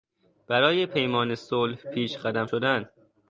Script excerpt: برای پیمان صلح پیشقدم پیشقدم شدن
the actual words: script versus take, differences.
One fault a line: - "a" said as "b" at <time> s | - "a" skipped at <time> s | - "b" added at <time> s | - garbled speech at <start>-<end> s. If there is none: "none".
- "پیشقدم" skipped at 2.5 s